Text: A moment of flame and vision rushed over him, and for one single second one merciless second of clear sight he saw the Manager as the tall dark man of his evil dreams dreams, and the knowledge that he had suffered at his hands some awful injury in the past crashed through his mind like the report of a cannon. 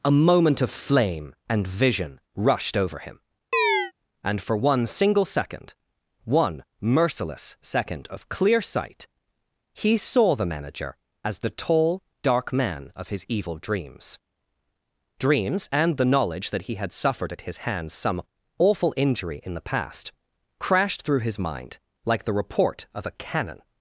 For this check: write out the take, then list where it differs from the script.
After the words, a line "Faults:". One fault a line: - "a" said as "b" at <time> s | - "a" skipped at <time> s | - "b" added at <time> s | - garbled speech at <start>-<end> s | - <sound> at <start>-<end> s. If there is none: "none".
A moment of flame and vision rushed over him, and for one single second one merciless second of clear sight he saw the Manager as the tall dark man of his evil dreams dreams, and the knowledge that he had suffered at his hands some awful injury in the past crashed through his mind like the report of a cannon.
Faults:
- chirp at 3.5-3.9 s